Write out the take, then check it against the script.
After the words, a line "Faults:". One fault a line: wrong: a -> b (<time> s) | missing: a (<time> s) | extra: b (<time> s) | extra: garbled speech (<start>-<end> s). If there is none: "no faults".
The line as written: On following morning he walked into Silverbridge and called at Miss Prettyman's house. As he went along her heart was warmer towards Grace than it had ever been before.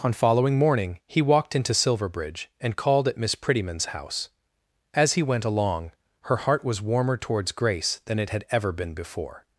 On following morning he walked into Silverbridge and called at Miss Prettyman's house. As he went along her heart was warmer towards Grace than it had ever been before.
Faults:
no faults